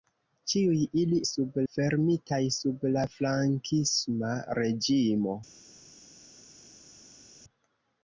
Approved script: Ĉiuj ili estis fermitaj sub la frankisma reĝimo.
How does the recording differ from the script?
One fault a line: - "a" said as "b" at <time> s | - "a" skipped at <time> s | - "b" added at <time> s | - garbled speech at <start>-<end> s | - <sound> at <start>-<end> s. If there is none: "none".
- "estis" said as "sub" at 1.3 s